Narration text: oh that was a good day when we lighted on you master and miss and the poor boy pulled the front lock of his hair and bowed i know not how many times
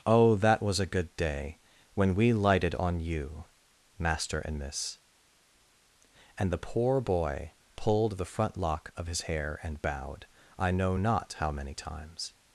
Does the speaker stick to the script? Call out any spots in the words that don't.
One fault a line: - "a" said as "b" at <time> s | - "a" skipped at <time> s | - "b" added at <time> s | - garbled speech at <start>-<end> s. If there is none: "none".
none